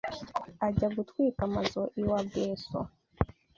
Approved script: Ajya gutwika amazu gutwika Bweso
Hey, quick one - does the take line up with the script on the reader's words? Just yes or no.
no